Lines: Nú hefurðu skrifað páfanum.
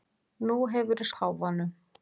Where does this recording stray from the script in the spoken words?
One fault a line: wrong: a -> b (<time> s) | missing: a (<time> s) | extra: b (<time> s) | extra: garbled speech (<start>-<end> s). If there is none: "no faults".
missing: skrifað (1.1 s)